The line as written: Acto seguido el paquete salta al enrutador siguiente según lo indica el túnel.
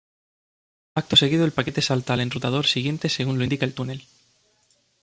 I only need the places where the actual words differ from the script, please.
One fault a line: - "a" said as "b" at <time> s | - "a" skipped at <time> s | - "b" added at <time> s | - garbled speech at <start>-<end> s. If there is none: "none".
none